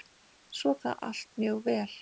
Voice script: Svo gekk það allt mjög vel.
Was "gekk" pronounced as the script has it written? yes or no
no